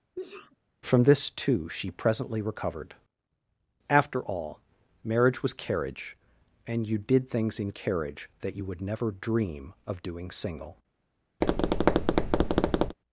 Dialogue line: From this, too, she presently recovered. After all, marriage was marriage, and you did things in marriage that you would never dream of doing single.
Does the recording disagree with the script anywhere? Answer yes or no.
yes